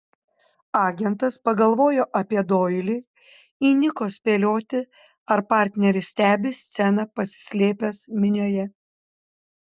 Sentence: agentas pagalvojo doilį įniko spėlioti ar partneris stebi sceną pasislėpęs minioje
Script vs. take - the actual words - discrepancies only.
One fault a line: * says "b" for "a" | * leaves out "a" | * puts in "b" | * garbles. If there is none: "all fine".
* puts in "apie"